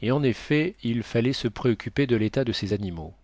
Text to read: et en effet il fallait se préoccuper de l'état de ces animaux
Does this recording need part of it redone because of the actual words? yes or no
no